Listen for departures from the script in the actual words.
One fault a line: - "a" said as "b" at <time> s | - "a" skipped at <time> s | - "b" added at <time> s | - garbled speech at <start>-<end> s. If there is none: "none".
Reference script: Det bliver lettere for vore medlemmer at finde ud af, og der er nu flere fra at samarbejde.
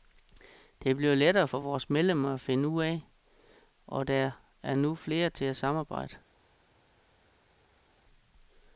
- "fra" said as "til" at 5.3 s